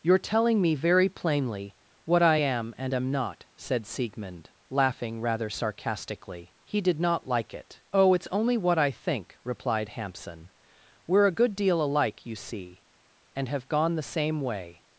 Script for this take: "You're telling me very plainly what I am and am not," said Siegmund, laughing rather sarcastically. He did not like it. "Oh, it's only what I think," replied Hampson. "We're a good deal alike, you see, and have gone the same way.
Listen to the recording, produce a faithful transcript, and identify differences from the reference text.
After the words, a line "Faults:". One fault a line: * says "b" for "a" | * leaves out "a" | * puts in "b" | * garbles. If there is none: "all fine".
"You're telling me very plainly what I am and am not," said Siegmund, laughing rather sarcastically. He did not like it. "Oh, it's only what I think," replied Hampson. "We're a good deal alike, you see, and have gone the same way.
Faults:
all fine